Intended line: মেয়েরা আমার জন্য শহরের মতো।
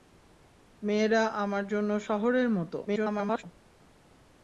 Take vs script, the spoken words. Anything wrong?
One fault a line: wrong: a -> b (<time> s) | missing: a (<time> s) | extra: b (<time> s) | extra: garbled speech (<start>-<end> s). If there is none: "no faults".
extra: garbled speech (2.9-3.4 s)